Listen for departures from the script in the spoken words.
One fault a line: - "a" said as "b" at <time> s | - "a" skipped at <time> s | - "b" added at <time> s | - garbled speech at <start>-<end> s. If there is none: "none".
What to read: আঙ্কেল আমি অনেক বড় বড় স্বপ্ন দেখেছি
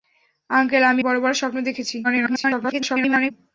- "অনেক" skipped at 1.0 s
- garbled speech at 2.0-3.3 s